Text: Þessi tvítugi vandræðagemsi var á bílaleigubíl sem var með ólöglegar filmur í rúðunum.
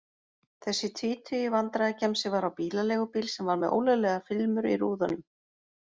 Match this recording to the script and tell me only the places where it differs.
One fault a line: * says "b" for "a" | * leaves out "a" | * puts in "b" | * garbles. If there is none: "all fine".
all fine